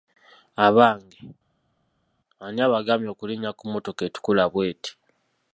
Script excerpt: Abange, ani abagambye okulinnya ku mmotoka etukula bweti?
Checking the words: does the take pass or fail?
pass